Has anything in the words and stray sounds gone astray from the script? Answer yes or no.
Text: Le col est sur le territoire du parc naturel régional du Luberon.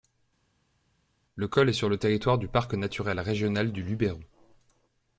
no